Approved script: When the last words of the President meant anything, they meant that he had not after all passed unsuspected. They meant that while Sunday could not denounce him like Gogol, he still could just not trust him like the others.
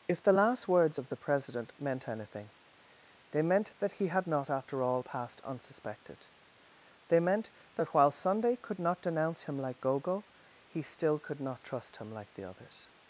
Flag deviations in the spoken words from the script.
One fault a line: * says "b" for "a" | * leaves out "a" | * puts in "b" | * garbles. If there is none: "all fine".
* says "If" for "When"
* leaves out "just"